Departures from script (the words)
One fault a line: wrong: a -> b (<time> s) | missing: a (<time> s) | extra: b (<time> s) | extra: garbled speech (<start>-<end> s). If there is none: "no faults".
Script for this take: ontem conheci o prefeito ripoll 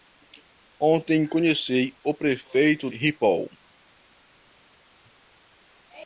no faults